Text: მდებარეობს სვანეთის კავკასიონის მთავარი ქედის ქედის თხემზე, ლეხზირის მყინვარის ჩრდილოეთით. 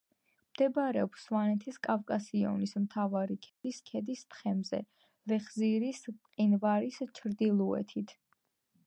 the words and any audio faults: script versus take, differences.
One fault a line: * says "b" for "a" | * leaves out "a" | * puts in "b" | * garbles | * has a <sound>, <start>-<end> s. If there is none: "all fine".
* has a dropout, 3.5-3.6 s